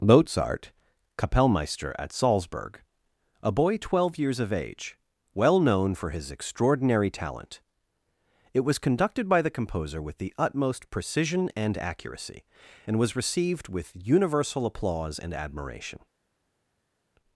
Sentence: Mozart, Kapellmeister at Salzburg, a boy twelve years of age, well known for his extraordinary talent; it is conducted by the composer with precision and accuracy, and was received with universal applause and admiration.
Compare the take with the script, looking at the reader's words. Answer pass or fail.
fail